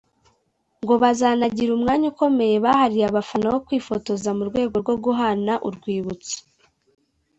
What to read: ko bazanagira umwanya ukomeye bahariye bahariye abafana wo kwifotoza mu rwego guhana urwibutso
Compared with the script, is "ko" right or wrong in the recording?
wrong